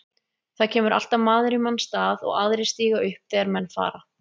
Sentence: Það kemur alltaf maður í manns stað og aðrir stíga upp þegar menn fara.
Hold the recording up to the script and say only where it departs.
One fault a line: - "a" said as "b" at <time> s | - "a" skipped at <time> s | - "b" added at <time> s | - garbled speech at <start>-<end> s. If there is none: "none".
none